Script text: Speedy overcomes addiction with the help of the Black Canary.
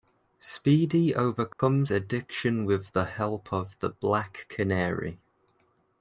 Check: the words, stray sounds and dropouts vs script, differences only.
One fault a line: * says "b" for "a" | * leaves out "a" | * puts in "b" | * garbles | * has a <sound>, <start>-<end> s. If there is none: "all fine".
* has a dropout, 1.5-1.6 s